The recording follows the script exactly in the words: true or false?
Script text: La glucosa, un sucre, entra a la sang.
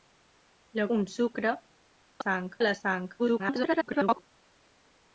false